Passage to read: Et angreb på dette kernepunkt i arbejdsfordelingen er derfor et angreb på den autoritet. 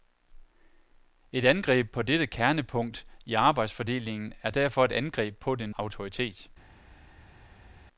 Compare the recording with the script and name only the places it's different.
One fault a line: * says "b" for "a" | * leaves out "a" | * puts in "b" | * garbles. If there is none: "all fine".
all fine